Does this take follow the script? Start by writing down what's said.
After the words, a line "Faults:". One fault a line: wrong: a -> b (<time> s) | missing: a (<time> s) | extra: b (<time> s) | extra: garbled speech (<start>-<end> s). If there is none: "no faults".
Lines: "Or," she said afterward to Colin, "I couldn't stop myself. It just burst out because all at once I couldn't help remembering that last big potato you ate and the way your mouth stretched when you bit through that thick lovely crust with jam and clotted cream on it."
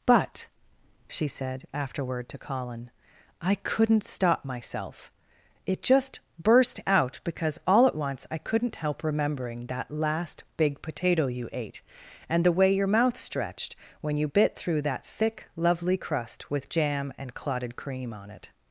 "But," she said afterward to Colin, "I couldn't stop myself. It just burst out because all at once I couldn't help remembering that last big potato you ate and the way your mouth stretched when you bit through that thick lovely crust with jam and clotted cream on it."
Faults:
wrong: Or -> But (0.1 s)